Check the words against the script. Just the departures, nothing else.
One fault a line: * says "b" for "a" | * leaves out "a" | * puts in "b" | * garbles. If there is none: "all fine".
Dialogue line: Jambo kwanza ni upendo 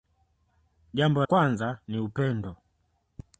all fine